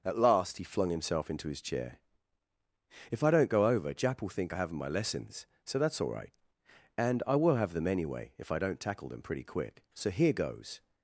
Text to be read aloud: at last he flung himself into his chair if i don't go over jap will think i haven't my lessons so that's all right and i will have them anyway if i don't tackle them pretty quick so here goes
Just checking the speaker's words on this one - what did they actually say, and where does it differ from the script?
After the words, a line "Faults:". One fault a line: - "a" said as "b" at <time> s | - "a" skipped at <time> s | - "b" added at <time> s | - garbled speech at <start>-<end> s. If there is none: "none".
at last he flung himself into his chair if i don't go over jap will think i haven't my lessons so that's all right and i will have them anyway if i don't tackle them pretty quick so here goes
Faults:
none